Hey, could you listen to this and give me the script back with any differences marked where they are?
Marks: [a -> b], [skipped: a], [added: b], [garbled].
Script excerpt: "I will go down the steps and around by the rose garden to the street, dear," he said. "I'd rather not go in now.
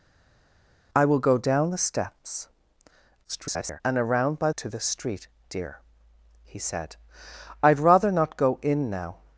"I will go down the steps [garbled] and around by [skipped: the rose garden] to the street, dear," he said. "I'd rather not go in now.